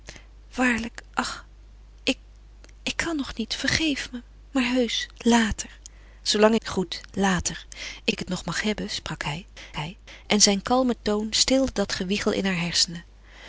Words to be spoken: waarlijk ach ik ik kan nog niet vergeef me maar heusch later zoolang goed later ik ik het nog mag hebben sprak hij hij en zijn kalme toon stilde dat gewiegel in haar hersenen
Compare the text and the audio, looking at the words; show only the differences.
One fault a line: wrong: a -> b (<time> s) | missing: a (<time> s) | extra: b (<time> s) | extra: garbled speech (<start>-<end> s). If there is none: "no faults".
no faults